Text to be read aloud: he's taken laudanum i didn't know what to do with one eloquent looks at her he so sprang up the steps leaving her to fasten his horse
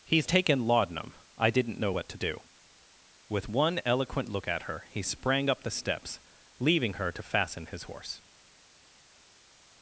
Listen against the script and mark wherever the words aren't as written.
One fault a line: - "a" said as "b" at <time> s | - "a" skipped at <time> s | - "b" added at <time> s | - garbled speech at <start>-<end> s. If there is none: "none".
- "looks" said as "look" at 4.3 s
- "so" skipped at 5.0 s